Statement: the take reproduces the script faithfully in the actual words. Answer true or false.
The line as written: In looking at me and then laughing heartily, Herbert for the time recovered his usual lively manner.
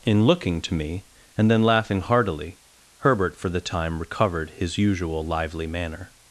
false